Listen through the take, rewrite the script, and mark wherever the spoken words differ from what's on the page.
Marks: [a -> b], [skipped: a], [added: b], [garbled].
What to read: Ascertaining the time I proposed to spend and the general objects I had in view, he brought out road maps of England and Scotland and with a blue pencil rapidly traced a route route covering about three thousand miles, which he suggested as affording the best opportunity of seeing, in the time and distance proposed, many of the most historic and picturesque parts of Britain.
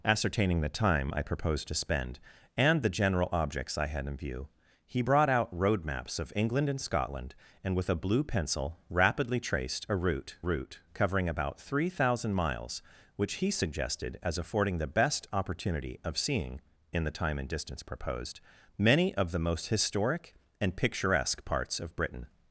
Ascertaining the time I proposed to spend and the general objects I had in view, he brought out road maps of England and Scotland and with a blue pencil rapidly traced a route route covering about three thousand miles, which he suggested as affording the best opportunity of seeing, in the time and distance proposed, many of the most historic and picturesque parts of Britain.